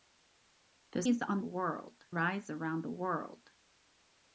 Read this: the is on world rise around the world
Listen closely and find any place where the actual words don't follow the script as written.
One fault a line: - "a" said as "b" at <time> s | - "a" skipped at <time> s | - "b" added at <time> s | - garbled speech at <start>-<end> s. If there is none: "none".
none